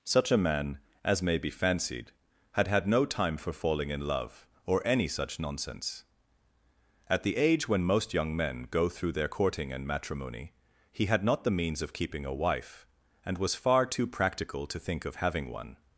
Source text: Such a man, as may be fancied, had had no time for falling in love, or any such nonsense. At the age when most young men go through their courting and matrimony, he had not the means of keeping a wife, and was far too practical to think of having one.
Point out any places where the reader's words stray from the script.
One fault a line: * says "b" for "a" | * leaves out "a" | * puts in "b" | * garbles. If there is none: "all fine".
all fine